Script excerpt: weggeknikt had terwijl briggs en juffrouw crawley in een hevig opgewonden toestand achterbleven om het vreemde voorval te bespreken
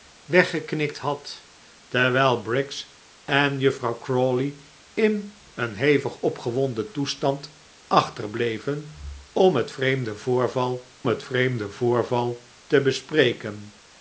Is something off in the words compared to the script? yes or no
yes